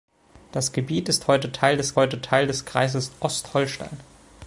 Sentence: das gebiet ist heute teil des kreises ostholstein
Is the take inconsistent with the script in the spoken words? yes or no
yes